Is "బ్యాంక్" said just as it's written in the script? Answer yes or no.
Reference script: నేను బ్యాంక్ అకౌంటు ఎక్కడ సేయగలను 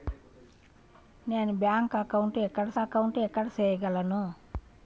yes